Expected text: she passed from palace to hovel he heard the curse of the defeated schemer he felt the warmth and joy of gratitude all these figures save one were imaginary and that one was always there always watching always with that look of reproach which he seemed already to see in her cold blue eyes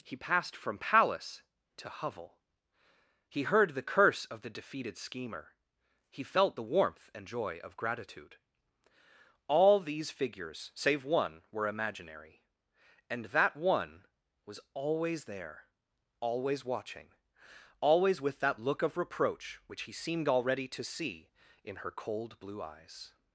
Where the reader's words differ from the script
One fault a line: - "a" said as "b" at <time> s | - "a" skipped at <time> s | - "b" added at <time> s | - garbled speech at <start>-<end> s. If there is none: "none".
- "she" said as "he" at 0.0 s